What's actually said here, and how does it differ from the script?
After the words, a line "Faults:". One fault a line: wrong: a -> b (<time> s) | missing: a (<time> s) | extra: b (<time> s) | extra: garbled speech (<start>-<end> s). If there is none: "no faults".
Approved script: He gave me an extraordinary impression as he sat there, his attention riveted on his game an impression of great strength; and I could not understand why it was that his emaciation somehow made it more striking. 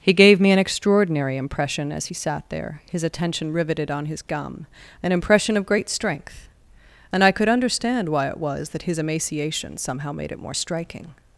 He gave me an extraordinary impression as he sat there, his attention riveted on his gum an impression of great strength; and I could understand why it was that his emaciation somehow made it more striking.
Faults:
wrong: game -> gum (4.2 s)
missing: not (7.5 s)